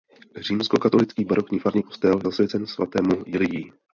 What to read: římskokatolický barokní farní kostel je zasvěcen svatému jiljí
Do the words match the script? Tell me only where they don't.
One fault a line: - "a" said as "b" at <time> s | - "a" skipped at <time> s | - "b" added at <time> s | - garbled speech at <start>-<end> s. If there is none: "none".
- "je" skipped at 2.2 s